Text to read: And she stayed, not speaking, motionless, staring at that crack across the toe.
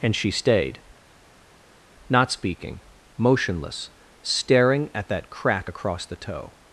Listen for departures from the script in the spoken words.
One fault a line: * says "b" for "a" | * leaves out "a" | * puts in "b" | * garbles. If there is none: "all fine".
all fine